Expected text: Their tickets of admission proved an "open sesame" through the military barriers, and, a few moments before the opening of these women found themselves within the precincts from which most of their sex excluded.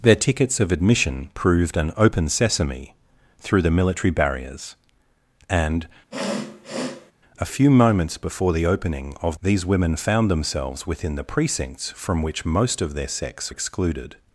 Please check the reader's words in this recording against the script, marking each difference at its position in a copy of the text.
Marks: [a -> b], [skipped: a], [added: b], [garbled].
Their tickets of admission proved an "open sesame" through the military barriers, and, a few moments before the opening of these women found themselves within the precincts from which most of their sex excluded.